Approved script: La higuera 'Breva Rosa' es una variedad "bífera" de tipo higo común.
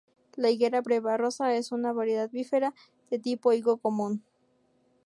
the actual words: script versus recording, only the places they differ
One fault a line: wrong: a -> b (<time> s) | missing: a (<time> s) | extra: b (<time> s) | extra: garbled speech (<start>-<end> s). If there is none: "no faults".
no faults